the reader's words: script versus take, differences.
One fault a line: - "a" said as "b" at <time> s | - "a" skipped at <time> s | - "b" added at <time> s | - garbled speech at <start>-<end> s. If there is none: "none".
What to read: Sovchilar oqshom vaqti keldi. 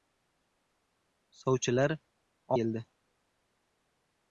- "oqshom vaqti" skipped at 1.9 s